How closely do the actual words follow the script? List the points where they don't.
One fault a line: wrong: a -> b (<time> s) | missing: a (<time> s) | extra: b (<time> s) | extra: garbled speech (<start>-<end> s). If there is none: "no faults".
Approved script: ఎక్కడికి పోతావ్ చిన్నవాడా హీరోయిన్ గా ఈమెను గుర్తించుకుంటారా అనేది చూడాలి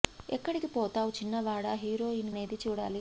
missing: గా ఈమెను గుర్తించుకుంటారా (2.3 s)